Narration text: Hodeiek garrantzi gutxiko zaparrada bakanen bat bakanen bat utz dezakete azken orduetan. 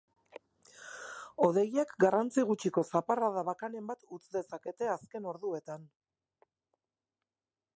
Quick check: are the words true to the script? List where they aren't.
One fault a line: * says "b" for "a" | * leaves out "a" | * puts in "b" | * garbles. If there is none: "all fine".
* leaves out "bakanen bat"